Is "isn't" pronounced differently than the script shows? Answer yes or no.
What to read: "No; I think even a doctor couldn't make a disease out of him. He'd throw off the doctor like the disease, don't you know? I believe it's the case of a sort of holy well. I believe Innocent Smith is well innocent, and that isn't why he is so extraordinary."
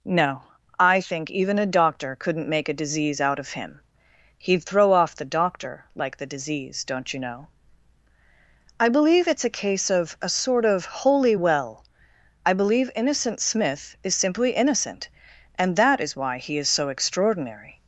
yes